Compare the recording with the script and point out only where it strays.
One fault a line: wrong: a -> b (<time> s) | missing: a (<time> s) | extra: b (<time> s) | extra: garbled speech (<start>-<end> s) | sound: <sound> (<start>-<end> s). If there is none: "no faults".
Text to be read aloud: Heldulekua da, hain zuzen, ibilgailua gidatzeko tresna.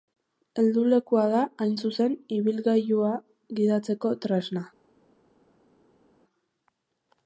no faults